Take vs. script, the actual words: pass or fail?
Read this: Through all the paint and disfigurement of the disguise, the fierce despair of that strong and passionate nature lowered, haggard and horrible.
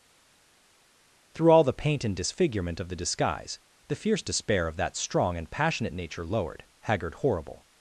fail